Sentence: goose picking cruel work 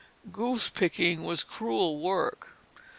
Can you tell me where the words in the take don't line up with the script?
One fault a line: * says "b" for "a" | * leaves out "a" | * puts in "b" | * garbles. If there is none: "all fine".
* puts in "was"